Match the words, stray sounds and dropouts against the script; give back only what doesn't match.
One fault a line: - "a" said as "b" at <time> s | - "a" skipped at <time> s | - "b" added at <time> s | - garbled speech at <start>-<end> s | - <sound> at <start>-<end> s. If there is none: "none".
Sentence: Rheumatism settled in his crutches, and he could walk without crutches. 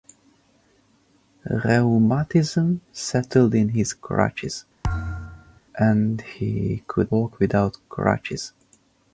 - thud at 4.8-5.6 s